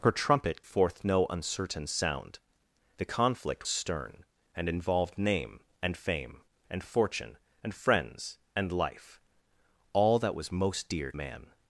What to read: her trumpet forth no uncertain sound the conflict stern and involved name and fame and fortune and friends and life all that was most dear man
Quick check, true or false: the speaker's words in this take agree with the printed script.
true